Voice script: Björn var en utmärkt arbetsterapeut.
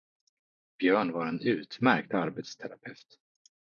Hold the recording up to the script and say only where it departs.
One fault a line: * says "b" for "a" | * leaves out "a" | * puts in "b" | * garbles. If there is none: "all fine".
all fine